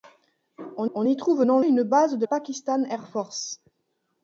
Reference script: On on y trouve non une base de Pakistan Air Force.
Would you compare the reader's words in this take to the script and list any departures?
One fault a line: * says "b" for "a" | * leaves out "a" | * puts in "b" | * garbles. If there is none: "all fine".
all fine